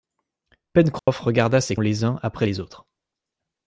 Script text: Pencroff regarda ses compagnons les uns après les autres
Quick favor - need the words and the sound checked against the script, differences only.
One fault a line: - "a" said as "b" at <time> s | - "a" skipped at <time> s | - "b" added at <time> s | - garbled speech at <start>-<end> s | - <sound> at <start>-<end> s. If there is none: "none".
- dropout at 1.0-1.1 s
- "compagnons" skipped at 1.8 s